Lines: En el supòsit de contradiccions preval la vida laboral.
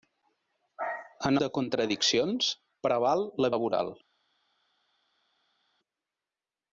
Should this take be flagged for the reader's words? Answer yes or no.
yes